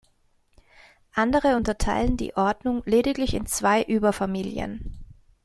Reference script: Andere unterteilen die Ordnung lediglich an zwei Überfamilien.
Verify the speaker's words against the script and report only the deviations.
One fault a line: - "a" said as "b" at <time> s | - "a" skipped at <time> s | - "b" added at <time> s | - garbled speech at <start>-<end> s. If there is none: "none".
- "an" said as "in" at 3.3 s